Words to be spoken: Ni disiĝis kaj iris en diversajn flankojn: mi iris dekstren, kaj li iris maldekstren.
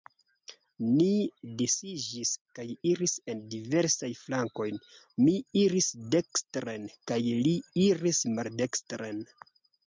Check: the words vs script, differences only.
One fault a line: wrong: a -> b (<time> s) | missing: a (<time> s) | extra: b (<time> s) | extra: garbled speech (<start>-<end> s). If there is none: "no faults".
no faults